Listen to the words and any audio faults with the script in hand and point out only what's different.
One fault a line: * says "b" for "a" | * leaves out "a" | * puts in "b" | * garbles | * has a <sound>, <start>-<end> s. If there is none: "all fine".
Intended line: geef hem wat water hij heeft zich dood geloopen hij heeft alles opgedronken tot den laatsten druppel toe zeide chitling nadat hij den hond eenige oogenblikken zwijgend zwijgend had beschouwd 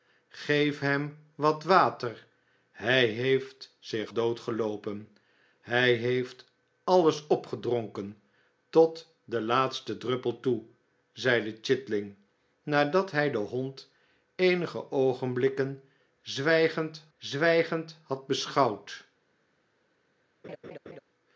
* has a laugh, 20.4-21.0 s